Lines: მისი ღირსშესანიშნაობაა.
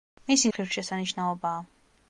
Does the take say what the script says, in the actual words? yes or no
yes